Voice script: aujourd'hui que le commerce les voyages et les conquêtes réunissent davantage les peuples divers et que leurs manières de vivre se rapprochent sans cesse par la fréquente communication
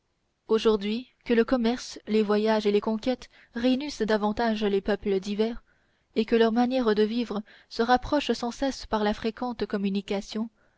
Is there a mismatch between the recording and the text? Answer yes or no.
no